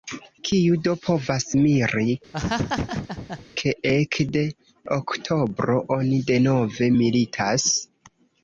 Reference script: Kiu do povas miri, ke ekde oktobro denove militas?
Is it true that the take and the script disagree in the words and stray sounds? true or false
true